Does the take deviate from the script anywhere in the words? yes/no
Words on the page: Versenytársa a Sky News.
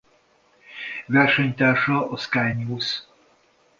no